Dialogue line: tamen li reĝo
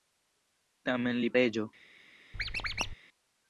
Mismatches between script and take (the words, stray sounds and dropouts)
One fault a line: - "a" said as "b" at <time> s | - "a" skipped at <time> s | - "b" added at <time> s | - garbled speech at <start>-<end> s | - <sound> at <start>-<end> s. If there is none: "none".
- squeak at 2.3-3.0 s